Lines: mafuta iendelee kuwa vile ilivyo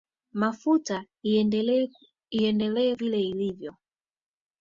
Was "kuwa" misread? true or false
true